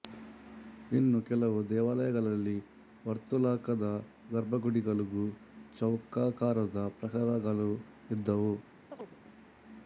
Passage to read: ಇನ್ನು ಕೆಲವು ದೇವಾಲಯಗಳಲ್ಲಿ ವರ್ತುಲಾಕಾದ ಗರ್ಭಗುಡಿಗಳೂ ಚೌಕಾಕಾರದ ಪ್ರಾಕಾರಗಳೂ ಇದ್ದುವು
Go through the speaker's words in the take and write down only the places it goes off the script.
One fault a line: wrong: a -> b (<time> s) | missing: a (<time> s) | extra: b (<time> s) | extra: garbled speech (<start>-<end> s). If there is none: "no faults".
no faults